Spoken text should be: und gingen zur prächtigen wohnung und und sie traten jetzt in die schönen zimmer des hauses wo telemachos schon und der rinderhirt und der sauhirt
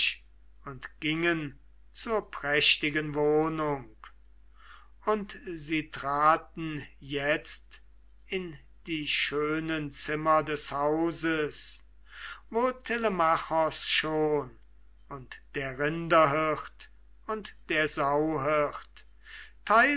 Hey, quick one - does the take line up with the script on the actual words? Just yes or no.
no